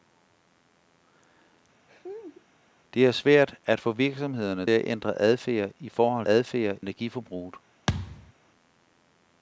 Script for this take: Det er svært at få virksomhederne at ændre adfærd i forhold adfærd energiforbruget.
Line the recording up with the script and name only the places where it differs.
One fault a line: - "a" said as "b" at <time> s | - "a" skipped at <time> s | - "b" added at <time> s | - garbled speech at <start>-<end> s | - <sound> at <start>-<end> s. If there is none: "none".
- laugh at 1.9-2.4 s
- thud at 7.9-8.3 s